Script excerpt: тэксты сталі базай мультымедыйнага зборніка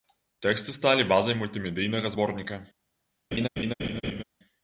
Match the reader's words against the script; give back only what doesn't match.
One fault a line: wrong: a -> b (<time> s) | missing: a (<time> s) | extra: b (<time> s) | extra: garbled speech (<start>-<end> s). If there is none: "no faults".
no faults